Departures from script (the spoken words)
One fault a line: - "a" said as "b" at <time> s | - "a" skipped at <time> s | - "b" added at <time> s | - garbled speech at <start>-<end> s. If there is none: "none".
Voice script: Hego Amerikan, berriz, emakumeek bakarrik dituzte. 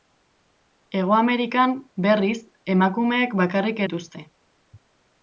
none